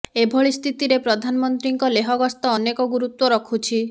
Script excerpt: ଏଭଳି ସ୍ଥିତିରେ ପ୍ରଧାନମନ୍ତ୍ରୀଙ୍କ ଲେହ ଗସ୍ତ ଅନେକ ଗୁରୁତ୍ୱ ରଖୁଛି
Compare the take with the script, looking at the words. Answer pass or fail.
pass